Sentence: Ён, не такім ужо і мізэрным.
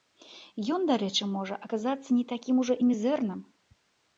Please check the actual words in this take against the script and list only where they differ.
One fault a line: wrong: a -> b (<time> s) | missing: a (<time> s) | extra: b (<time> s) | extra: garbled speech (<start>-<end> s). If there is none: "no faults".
extra: дарэчы можа аказацца (0.9 s)